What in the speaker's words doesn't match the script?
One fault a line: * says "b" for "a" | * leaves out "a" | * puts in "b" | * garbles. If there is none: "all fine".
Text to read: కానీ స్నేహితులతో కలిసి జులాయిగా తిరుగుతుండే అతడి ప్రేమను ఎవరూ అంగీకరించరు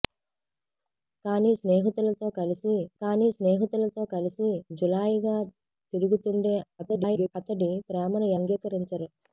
* puts in "కానీ స్నేహితులతో కలిసి"
* garbles
* leaves out "ఎవరూ"